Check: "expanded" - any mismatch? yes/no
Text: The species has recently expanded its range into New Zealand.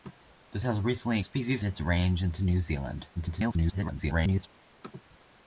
yes